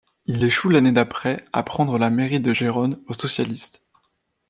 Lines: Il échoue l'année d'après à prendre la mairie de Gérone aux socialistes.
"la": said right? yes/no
yes